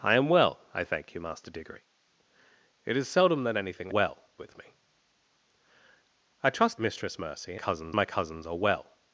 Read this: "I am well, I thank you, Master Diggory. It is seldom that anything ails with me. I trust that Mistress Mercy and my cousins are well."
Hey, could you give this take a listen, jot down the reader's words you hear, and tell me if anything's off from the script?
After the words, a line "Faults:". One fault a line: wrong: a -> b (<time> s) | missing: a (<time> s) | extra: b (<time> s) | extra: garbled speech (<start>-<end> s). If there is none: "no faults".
"I am well, I thank you, Master Diggory. It is seldom that anything well with me. I trust Mistress Mercy cousins my cousins are well."
Faults:
wrong: ails -> well (3.9 s)
missing: that (6.8 s)
wrong: and -> cousins (7.6 s)